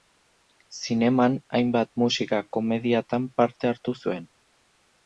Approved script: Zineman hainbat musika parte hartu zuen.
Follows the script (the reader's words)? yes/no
no